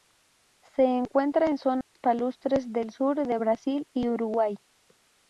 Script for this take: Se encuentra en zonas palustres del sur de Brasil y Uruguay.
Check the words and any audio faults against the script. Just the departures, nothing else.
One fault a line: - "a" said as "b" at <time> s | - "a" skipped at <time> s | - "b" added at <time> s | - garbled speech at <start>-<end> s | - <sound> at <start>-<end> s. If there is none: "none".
- dropout at 1.8-2.0 s